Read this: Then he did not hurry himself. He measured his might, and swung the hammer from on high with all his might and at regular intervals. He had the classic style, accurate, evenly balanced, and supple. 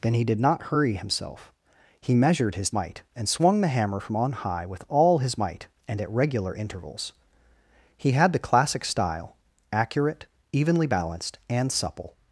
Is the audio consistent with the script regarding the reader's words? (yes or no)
yes